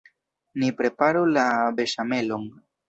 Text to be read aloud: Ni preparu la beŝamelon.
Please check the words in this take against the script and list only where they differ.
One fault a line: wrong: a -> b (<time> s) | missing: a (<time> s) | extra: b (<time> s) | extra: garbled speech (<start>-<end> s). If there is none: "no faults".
no faults